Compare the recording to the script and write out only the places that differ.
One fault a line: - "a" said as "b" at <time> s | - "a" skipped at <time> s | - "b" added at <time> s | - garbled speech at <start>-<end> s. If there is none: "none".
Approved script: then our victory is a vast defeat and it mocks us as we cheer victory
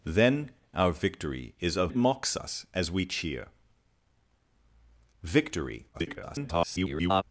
- "vast defeat and" skipped at 1.9 s
- garbled speech at 5.9-7.2 s